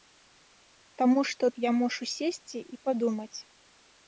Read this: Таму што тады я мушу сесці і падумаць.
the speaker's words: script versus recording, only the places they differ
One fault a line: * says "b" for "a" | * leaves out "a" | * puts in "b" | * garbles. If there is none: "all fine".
* leaves out "тады"